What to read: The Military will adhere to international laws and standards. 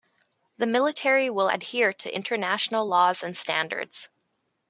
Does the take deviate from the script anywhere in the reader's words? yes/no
no